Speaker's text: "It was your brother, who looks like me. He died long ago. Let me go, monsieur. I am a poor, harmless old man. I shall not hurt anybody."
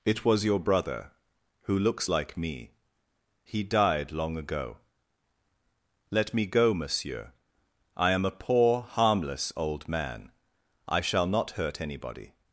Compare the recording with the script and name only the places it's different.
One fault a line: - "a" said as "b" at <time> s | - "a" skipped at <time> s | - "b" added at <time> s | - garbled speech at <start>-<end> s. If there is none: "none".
none